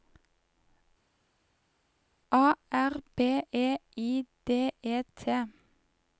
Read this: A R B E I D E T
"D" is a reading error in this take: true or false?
false